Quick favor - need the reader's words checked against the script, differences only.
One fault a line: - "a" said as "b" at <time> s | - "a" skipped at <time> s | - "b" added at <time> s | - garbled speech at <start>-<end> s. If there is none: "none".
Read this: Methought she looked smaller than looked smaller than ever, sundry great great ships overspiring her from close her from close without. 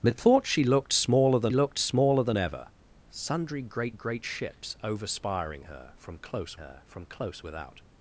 none